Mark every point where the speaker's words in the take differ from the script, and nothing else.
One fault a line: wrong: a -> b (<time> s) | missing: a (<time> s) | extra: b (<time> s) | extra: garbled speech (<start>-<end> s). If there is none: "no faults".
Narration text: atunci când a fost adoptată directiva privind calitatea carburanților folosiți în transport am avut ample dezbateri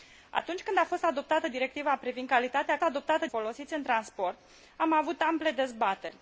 wrong: carburanților -> adoptată (2.8 s)